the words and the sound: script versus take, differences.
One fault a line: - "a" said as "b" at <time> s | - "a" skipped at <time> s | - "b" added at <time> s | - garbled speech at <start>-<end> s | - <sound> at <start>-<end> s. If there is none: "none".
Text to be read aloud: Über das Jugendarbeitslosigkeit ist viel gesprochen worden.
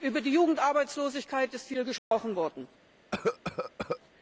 - "das" said as "die" at 0.2 s
- dropout at 2.0-2.1 s
- cough at 3.1-4.0 s